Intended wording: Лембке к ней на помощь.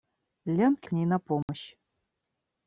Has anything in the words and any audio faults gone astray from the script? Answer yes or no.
yes